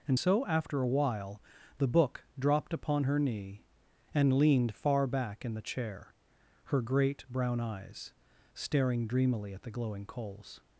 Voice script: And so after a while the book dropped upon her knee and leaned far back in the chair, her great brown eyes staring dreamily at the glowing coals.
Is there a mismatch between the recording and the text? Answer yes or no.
no